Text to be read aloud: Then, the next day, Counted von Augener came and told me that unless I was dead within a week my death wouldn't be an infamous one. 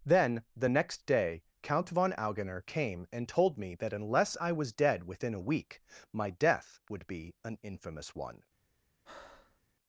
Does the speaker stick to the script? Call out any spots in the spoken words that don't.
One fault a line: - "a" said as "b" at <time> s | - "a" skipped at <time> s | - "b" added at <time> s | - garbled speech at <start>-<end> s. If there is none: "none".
- "Counted" said as "Count" at 1.6 s
- "wouldn't" said as "would" at 6.9 s